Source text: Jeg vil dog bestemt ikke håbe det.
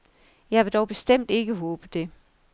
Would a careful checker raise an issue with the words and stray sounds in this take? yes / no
no